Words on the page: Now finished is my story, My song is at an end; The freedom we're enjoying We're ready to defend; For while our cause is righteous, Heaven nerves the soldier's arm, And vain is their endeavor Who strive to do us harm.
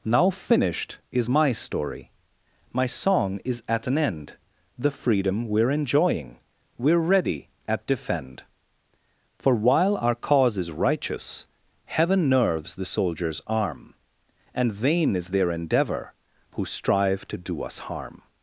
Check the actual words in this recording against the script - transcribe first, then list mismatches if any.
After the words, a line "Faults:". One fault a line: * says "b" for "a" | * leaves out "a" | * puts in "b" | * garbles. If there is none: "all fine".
Now finished is my story, My song is at an end; The freedom we're enjoying We're ready at defend; For while our cause is righteous, Heaven nerves the soldier's arm, And vain is their endeavor Who strive to do us harm.
Faults:
* says "at" for "to"